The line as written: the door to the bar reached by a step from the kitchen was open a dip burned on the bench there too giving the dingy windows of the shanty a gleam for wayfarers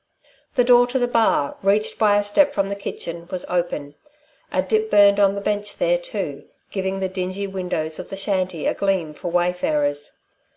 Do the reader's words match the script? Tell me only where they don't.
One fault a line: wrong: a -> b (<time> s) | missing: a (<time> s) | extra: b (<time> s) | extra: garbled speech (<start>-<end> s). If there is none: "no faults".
no faults